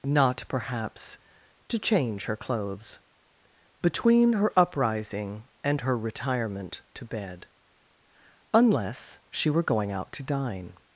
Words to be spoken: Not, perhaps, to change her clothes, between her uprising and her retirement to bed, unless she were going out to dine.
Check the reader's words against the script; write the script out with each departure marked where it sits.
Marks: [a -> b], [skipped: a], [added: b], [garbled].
Not, perhaps, to change her clothes, between her uprising and her retirement to bed, unless she were going out to dine.